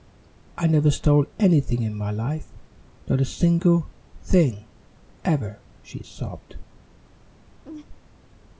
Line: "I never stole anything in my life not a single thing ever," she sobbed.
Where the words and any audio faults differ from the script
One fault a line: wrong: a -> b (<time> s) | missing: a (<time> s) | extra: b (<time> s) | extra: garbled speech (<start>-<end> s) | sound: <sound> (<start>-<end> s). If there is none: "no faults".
sound: laugh (7.6-7.9 s)